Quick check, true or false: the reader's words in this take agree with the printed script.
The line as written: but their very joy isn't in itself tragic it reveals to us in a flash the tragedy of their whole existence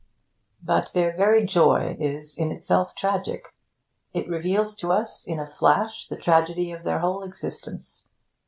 false